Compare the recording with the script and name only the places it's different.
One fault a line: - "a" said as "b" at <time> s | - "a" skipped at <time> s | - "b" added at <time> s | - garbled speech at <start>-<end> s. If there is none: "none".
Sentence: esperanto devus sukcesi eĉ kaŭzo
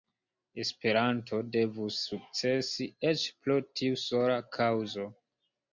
- "pro tiu sola" added at 3.4 s